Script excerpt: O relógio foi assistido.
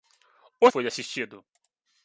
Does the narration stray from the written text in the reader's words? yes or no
yes